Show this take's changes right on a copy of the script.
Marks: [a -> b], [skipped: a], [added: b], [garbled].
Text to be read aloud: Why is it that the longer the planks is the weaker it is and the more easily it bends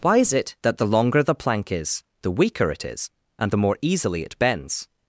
Why is it that the longer the [planks -> plank] is the weaker it is and the more easily it bends